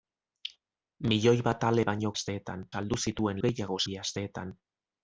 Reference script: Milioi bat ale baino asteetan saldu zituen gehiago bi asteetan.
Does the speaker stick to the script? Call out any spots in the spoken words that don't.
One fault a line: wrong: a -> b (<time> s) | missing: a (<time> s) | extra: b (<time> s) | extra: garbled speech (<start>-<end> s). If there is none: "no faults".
no faults